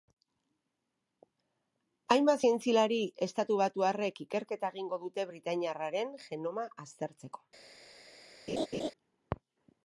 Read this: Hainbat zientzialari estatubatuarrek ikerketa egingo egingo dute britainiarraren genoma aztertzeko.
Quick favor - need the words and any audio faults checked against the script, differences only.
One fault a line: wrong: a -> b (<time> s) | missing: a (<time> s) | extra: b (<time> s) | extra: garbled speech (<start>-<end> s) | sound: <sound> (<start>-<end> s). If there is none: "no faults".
missing: egingo (5.0 s)
sound: laugh (8.5-8.9 s)